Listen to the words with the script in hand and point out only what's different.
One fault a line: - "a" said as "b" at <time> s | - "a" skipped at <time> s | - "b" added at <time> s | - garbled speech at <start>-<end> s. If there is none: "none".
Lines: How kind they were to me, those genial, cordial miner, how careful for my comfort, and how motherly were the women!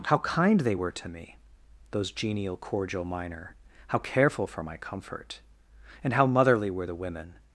none